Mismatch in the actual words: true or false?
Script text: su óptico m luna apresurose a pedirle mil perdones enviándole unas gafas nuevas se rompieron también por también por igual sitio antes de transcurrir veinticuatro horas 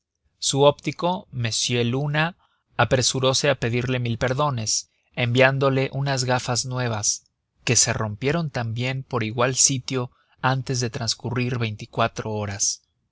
true